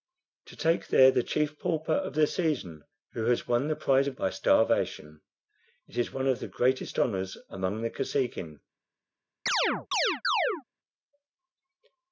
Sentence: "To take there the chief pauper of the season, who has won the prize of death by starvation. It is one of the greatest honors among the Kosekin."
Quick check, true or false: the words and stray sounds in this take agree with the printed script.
false